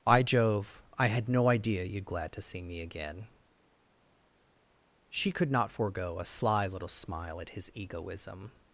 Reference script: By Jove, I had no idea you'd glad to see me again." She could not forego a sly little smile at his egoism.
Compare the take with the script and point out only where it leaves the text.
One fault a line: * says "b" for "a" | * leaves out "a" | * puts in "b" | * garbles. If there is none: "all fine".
all fine